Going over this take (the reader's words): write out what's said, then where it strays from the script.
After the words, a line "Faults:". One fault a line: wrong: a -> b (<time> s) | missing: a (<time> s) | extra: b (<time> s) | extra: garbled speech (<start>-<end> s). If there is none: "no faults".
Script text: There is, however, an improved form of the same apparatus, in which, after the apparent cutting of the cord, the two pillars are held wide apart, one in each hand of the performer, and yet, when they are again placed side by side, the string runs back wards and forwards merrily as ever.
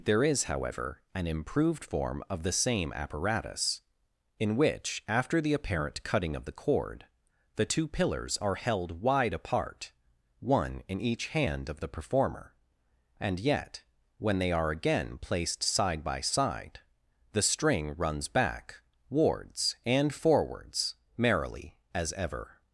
There is, however, an improved form of the same apparatus, in which, after the apparent cutting of the cord, the two pillars are held wide apart, one in each hand of the performer, and yet, when they are again placed side by side, the string runs back wards and forwards merrily as ever.
Faults:
no faults